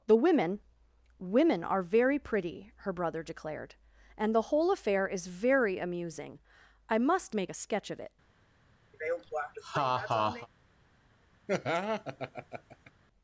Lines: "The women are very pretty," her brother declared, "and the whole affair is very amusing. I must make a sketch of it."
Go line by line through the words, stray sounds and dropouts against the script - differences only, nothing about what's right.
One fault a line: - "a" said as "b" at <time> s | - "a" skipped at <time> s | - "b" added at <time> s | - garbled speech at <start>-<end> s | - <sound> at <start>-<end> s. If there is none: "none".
- "women" added at 1.2 s
- laugh at 8.9-10.5 s
- laugh at 11.5-12.9 s